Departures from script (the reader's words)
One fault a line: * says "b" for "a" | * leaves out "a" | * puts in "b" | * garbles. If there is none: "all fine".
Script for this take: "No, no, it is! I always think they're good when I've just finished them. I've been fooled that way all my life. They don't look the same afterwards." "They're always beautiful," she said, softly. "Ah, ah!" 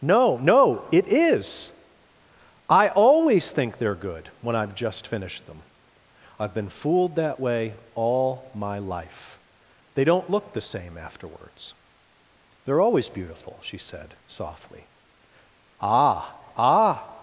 all fine